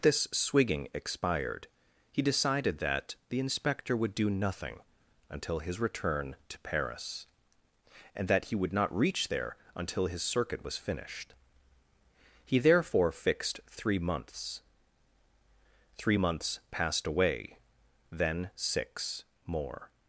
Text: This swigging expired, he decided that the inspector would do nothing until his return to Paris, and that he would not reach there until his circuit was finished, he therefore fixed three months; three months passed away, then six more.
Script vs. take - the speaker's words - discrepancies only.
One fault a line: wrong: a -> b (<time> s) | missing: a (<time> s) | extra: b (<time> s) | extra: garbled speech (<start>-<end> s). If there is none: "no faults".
no faults